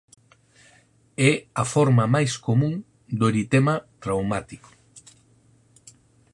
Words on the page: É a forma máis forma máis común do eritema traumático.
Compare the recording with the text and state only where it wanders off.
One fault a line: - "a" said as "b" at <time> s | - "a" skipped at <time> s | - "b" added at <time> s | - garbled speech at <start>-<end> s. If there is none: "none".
- "forma máis" skipped at 2.3 s